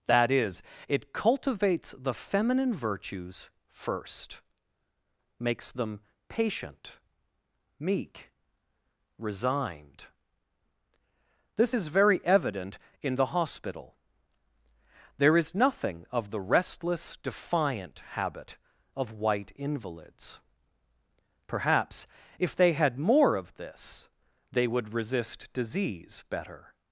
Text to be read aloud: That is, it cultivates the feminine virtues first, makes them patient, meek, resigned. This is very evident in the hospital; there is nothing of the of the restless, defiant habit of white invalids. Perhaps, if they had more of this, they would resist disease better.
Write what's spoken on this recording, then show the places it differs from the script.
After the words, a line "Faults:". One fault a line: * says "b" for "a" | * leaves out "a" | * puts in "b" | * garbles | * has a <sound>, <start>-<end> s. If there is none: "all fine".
That is, it cultivates the feminine virtues first, makes them patient, meek, resigned. This is very evident in the hospital; there is nothing of the restless, defiant habit of white invalids. Perhaps, if they had more of this, they would resist disease better.
Faults:
* leaves out "of the"